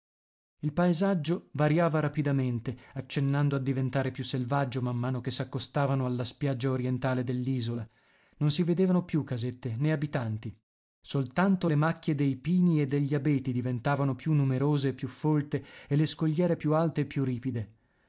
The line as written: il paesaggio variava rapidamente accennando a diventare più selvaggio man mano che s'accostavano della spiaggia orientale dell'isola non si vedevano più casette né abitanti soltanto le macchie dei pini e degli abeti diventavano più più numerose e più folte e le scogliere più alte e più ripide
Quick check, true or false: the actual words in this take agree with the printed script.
false